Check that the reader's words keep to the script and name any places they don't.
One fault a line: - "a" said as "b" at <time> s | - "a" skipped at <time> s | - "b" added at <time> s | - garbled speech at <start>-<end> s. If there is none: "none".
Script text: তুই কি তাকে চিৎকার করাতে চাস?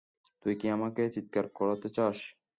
- "তাকে" said as "আমাকে" at 0.7 s